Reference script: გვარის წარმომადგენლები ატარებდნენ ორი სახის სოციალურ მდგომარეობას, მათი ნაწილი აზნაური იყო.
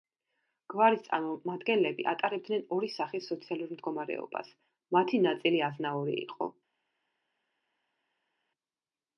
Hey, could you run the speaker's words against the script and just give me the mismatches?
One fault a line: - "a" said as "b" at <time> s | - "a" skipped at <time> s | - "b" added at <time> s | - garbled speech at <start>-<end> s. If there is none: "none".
none